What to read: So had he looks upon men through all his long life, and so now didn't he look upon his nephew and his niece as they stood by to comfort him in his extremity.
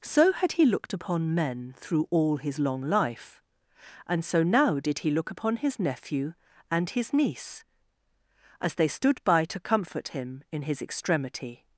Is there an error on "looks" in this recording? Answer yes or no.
yes